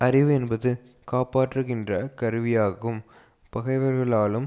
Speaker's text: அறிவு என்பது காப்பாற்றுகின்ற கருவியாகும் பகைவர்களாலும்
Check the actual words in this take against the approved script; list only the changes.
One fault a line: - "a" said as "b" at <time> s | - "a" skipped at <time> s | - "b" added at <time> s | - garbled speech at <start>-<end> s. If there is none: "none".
none